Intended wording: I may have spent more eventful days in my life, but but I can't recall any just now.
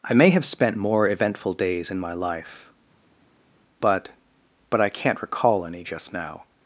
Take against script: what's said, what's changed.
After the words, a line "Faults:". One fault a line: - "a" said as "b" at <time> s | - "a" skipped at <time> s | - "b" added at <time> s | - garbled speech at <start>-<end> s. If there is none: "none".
I may have spent more eventful days in my life, but but I can't recall any just now.
Faults:
none